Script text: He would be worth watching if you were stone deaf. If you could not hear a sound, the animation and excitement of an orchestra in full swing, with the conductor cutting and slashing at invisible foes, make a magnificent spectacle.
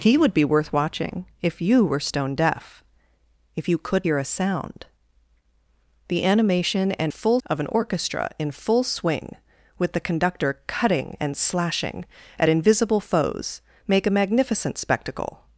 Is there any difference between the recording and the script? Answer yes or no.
yes